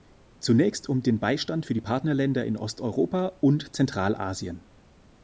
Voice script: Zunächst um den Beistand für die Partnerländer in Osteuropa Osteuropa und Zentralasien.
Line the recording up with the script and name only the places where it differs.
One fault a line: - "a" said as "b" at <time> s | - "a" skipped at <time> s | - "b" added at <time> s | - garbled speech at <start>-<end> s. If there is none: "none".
- "Osteuropa" skipped at 3.4 s